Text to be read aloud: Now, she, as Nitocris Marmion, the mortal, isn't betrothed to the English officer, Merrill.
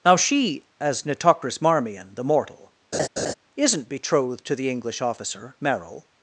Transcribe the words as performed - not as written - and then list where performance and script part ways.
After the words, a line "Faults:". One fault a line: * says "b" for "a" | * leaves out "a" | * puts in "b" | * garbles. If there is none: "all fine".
Now, she, as Nitocris Marmion, the mortal, isn't betrothed to the English officer, Merrill.
Faults:
all fine